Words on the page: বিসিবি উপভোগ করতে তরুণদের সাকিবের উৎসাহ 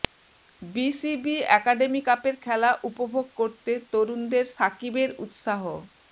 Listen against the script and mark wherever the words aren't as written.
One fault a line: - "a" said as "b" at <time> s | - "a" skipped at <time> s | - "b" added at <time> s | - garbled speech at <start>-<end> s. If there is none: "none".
- "একাডেমি কাপের খেলা" added at 1.6 s